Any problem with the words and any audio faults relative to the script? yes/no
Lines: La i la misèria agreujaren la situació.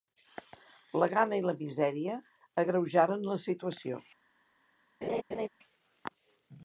yes